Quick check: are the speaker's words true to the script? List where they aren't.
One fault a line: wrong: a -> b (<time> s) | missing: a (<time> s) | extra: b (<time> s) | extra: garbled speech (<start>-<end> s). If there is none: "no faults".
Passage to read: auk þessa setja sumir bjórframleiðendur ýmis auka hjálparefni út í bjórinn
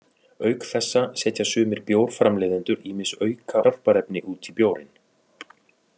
no faults